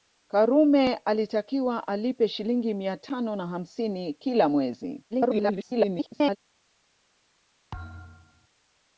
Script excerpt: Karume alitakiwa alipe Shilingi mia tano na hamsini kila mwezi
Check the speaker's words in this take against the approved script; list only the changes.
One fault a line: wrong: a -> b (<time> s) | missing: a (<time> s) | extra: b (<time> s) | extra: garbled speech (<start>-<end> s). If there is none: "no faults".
extra: garbled speech (5.1-6.4 s)